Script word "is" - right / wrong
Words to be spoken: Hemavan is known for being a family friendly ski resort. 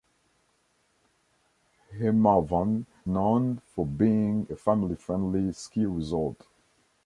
wrong